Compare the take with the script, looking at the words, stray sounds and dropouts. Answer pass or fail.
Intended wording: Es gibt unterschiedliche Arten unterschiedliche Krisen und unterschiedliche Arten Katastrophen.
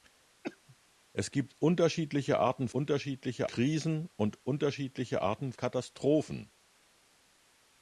fail